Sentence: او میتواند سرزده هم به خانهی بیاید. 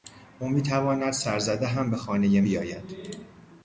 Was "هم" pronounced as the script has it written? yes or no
yes